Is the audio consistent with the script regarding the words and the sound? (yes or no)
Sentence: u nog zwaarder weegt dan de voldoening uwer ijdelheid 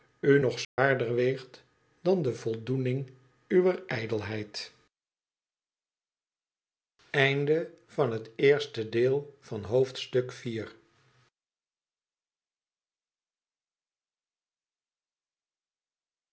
no